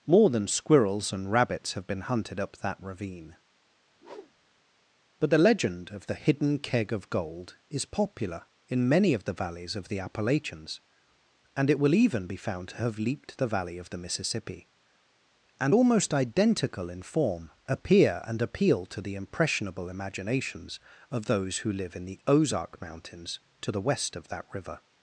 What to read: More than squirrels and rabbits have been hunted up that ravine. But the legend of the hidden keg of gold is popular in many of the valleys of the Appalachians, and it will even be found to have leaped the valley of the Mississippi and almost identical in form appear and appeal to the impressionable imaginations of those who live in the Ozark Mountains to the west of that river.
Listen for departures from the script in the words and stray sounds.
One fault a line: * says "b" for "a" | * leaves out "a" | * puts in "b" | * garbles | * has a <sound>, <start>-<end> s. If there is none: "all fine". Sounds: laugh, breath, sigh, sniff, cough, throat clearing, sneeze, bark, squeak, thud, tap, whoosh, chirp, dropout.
* has a whoosh, 3.9-4.6 s